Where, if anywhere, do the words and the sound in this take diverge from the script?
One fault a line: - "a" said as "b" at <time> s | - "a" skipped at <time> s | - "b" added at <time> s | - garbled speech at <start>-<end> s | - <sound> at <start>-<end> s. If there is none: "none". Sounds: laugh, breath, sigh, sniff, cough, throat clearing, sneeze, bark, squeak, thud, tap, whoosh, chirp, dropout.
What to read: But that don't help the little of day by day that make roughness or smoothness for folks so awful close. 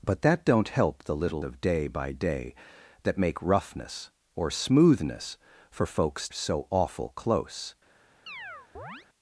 - chirp at 8.3-9.1 s